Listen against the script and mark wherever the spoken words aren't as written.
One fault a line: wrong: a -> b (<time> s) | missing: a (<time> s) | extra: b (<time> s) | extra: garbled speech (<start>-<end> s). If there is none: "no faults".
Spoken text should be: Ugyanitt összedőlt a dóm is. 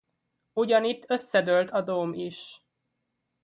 no faults